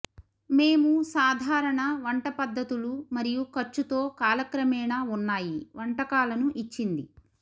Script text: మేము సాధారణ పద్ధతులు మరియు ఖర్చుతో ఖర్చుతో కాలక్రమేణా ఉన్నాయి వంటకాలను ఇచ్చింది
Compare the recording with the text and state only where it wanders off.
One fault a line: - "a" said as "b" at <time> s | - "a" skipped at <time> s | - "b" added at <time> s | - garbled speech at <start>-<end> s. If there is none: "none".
- "వంట" added at 2.0 s
- "ఖర్చుతో" skipped at 4.0 s